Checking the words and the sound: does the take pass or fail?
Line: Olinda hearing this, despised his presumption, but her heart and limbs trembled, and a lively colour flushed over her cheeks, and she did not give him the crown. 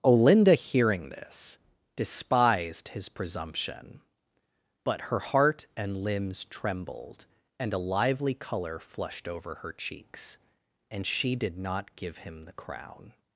pass